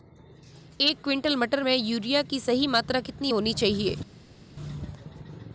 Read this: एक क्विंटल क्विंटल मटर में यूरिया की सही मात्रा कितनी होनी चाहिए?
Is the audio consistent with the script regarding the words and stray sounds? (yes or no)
no